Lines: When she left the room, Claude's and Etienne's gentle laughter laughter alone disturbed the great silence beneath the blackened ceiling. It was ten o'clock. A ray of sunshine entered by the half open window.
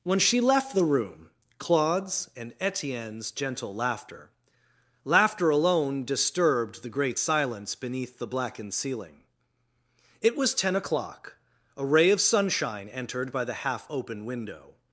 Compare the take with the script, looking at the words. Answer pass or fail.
pass